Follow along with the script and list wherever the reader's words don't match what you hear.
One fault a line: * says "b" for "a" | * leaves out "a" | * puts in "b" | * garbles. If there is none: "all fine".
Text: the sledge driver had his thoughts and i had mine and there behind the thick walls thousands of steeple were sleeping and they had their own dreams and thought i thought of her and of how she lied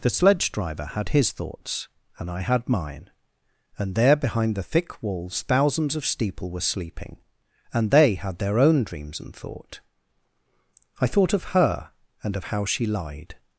all fine